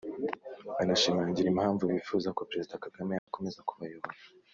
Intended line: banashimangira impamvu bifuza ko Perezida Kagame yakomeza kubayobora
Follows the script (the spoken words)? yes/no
yes